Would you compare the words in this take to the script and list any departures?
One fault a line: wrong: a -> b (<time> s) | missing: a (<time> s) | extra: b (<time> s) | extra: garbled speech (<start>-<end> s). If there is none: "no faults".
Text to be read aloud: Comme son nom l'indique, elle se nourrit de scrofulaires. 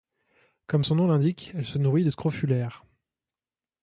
no faults